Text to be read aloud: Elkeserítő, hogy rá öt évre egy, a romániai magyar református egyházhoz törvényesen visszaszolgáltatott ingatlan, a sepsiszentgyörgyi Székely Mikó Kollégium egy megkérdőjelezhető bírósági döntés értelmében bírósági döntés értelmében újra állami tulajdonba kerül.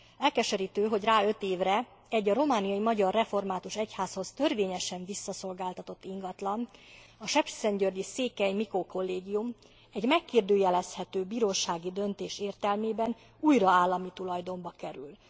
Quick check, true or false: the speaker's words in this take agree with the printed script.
false